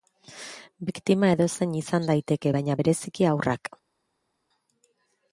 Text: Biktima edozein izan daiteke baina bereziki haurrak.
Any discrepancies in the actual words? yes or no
no